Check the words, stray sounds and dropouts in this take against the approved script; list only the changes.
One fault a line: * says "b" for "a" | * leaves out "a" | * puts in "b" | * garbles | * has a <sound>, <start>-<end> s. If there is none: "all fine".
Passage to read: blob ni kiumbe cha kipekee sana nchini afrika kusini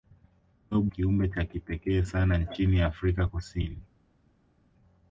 * leaves out "ni"